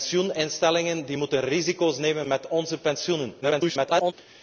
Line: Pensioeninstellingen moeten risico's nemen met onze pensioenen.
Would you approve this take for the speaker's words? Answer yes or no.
no